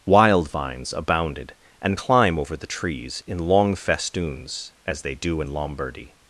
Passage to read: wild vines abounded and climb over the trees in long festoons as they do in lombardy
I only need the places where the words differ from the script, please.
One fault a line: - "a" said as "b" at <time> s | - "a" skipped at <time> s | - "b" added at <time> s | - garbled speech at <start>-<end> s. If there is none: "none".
none